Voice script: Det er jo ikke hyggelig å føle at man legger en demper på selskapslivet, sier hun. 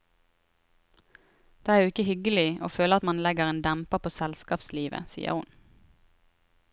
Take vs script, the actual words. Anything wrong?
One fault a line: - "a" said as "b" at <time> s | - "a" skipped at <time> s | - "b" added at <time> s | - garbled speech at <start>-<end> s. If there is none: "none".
none